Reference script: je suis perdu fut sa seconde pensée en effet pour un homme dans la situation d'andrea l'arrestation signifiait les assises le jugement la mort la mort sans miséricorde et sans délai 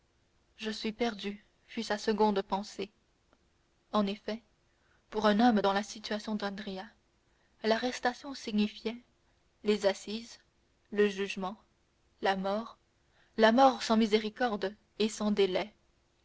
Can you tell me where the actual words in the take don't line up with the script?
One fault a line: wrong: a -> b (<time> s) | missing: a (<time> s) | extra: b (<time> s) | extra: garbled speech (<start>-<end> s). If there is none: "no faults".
no faults